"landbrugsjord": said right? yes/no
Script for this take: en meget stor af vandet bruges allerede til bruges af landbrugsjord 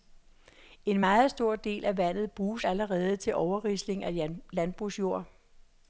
yes